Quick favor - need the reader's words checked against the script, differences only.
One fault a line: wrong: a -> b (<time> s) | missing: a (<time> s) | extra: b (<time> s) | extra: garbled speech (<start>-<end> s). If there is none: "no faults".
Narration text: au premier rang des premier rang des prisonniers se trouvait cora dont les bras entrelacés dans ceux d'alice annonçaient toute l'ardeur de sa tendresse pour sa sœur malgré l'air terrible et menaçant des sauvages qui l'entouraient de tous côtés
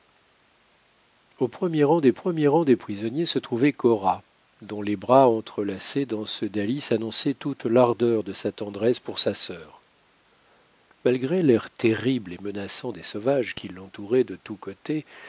no faults